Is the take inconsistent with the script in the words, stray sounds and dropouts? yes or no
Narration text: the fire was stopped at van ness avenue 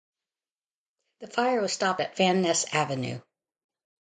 no